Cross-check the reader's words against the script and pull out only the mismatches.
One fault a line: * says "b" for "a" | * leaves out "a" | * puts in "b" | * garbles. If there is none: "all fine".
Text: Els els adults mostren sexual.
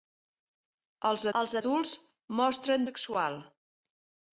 all fine